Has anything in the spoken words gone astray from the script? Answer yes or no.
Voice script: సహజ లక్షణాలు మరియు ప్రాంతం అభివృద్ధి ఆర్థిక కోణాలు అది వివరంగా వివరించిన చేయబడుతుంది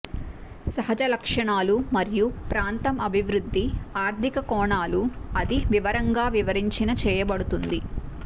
no